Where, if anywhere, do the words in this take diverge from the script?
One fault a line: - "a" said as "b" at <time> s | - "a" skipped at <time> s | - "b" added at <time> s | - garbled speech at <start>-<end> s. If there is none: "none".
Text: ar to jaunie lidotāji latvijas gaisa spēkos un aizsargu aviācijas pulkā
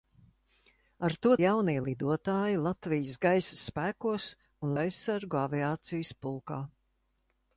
none